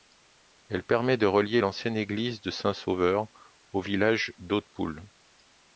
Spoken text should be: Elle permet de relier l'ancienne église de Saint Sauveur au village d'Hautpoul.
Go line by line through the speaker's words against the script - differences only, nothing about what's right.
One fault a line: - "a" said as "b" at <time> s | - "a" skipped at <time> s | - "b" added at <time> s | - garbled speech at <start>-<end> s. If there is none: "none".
none